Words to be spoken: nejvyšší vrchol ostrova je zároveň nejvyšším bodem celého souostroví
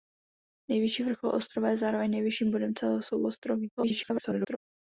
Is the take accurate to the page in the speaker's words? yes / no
no